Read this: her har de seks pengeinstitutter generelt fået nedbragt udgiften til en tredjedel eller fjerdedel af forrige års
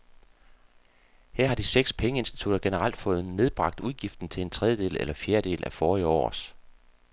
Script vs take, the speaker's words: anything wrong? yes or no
no